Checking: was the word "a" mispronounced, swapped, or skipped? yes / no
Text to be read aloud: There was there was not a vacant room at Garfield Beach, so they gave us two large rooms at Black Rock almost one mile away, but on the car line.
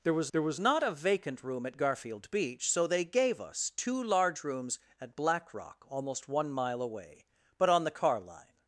no